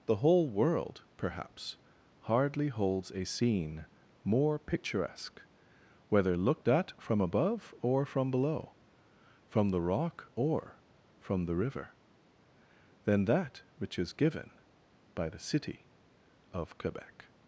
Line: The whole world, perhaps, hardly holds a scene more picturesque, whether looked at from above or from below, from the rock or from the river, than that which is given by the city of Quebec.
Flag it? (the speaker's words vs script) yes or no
no